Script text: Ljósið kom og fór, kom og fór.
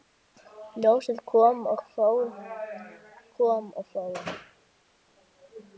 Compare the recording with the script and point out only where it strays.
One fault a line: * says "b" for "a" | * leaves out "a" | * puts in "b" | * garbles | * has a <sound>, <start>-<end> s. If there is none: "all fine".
all fine